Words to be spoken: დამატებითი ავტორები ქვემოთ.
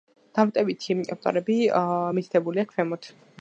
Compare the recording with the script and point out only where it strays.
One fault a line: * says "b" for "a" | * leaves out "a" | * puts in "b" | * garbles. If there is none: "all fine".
* puts in "მითითებულია"